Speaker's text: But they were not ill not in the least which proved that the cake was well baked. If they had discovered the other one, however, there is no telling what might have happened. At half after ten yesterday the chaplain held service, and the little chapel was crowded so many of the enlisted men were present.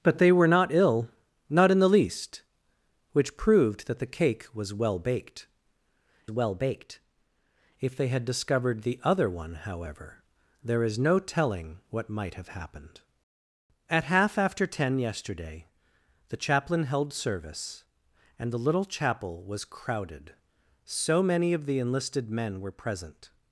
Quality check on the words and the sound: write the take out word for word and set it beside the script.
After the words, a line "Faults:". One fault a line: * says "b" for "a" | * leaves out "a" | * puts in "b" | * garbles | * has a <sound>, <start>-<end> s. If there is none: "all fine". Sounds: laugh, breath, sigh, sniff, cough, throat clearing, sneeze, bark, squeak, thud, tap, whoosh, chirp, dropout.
But they were not ill not in the least which proved that the cake was well baked well baked. If they had discovered the other one, however, there is no telling what might have happened. At half after ten yesterday the chaplain held service, and the little chapel was crowded so many of the enlisted men were present.
Faults:
* puts in "well baked"